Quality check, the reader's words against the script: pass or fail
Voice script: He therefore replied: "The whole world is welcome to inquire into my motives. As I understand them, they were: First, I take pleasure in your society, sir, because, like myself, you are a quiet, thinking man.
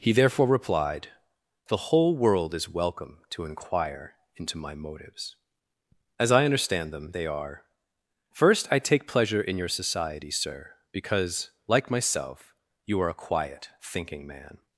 fail